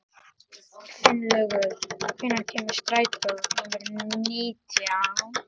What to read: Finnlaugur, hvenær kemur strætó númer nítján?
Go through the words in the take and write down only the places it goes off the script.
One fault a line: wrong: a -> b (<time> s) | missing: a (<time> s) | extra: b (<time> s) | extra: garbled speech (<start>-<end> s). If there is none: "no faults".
no faults